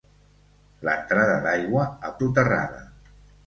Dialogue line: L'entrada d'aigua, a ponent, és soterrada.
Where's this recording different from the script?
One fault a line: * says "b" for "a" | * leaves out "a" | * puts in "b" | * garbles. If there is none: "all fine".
* leaves out "ponent és"